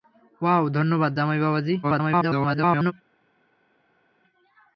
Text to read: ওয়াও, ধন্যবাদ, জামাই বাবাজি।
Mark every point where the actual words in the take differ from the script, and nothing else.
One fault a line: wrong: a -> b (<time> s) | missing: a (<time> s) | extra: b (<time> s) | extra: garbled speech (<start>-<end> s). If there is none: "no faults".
extra: garbled speech (1.8-2.9 s)